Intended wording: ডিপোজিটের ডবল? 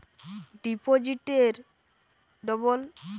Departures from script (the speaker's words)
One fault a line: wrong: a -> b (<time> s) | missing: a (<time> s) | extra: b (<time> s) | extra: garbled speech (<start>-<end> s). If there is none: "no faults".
no faults